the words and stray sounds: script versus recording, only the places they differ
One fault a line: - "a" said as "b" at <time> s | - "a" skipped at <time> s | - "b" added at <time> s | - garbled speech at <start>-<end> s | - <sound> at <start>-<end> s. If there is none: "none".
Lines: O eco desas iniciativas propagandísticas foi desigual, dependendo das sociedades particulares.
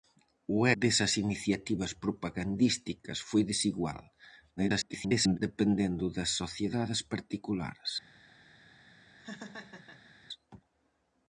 - "eco" skipped at 0.6 s
- garbled speech at 4.6-5.4 s
- laugh at 9.2-10.1 s